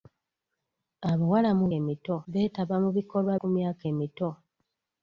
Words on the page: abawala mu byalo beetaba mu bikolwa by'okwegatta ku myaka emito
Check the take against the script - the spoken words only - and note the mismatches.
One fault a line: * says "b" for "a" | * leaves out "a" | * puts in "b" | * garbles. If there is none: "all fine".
* says "emito" for "byalo"
* leaves out "by'okwegatta"